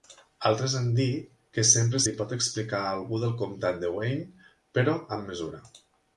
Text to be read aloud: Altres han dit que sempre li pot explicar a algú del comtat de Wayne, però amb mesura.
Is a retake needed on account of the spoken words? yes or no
no